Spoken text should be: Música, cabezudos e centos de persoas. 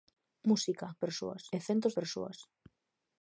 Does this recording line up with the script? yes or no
no